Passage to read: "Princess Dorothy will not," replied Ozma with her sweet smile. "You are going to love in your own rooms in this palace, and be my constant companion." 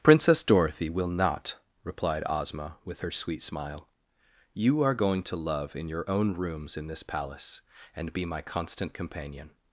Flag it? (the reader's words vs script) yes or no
no